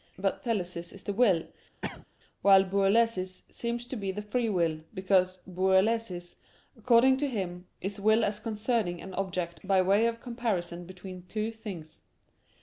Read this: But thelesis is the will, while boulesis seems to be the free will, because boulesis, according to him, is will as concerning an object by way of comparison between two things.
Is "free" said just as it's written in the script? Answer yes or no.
yes